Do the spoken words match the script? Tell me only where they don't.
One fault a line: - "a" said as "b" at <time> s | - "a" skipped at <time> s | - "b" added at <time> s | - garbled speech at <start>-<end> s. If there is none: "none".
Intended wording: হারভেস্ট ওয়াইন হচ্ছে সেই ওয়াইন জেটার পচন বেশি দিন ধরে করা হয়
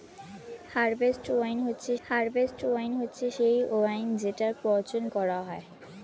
- "হারভেস্ট ওয়াইন হচ্ছে" added at 2.0 s
- "বেশি দিন ধরে" skipped at 5.0 s